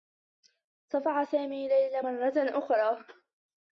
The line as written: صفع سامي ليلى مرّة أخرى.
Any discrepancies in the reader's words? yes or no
no